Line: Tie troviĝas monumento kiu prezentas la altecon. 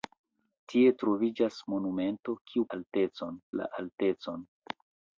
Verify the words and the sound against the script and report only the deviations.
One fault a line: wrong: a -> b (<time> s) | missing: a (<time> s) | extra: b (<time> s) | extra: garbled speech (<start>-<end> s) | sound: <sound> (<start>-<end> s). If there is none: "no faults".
wrong: prezentas -> altecon (2.8 s)